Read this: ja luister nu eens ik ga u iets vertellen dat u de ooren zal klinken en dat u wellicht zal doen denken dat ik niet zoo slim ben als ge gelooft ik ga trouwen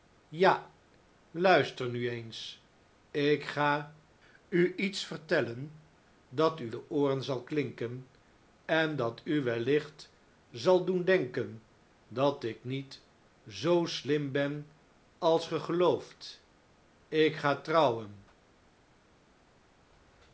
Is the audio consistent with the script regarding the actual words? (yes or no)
yes